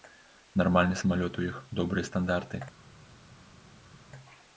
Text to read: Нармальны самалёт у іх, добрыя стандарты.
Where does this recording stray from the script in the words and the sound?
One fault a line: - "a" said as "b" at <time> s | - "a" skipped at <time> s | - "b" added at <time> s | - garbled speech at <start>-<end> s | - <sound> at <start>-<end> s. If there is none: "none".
none